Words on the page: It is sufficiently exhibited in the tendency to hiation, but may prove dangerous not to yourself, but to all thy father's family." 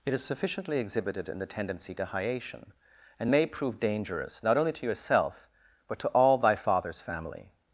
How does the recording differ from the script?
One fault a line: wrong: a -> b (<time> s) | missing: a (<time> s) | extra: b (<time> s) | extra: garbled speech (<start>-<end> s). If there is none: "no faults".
wrong: but -> and (3.2 s)
extra: only (4.6 s)